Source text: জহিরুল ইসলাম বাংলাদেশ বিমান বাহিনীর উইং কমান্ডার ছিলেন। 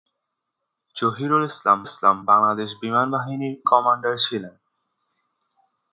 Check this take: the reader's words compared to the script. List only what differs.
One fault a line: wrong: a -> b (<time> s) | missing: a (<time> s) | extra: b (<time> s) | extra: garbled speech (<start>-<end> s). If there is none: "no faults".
extra: ইসলাম (1.8 s)
missing: উইং (3.5 s)